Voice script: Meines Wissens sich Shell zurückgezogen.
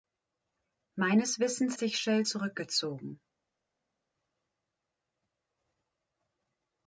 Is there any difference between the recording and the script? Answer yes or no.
no